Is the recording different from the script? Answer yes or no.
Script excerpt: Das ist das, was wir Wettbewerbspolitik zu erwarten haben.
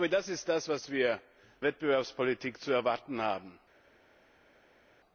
no